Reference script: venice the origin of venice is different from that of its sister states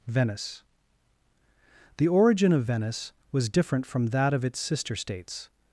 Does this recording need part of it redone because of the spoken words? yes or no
yes